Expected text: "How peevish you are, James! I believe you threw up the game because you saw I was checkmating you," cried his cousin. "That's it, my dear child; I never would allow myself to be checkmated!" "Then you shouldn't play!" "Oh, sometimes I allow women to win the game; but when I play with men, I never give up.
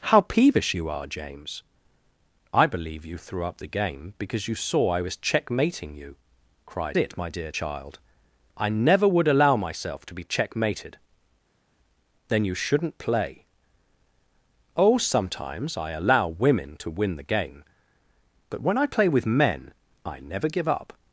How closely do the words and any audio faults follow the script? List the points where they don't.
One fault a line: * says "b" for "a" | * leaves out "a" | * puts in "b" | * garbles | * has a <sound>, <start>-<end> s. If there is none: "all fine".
* leaves out "his cousin That's"